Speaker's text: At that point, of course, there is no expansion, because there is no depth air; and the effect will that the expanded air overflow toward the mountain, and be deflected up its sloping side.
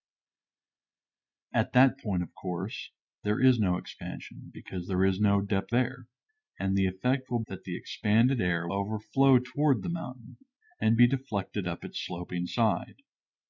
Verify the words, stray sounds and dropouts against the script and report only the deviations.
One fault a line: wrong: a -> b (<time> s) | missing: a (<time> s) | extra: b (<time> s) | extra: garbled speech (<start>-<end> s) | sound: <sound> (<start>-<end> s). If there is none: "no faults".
no faults